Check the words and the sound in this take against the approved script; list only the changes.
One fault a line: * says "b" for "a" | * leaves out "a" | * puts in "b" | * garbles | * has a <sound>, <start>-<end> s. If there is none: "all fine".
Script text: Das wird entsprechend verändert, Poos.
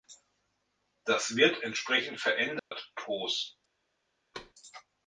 * has a dropout, 2.6-2.7 s
* has a thud, 4.3-4.5 s